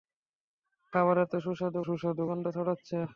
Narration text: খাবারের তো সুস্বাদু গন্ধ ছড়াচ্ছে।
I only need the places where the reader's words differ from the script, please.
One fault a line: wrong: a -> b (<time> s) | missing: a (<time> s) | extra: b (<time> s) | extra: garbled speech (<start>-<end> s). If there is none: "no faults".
extra: সুস্বাদু (1.8 s)